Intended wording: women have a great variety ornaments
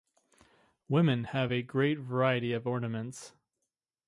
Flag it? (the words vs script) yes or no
yes